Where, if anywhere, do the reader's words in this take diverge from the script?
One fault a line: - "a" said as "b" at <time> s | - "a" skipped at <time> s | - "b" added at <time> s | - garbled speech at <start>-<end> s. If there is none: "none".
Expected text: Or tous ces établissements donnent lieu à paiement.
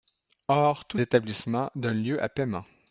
- "ces" skipped at 1.0 s